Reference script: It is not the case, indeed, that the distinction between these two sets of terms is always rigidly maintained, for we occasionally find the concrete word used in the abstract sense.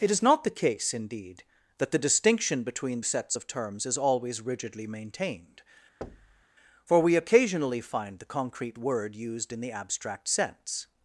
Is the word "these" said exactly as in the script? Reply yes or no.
no